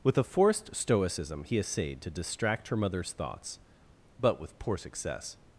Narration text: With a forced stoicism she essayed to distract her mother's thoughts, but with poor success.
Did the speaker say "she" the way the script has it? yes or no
no